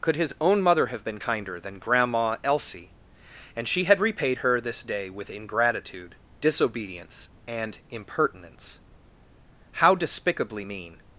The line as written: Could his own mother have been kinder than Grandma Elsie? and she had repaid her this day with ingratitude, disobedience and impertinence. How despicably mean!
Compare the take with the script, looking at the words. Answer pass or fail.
pass